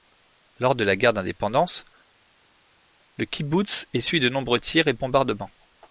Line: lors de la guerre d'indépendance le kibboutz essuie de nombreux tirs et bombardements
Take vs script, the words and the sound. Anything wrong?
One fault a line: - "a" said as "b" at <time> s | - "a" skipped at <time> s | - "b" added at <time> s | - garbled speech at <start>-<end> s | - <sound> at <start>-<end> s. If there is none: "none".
none